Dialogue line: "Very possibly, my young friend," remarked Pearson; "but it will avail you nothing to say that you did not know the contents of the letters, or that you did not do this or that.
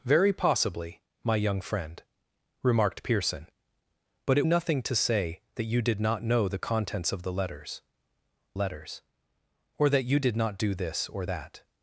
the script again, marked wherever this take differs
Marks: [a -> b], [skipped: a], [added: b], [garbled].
"Very possibly, my young friend," remarked Pearson; "but it [skipped: will avail you] nothing to say that you did not know the contents of the letters, [added: letters] or that you did not do this or that.